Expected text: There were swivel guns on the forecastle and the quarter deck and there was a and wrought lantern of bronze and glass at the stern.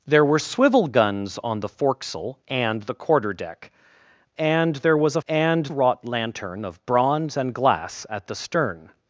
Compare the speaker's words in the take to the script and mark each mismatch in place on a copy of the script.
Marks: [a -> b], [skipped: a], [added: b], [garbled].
There were swivel guns on the forecastle and the quarter deck and there was a and wrought lantern of bronze and glass at the stern.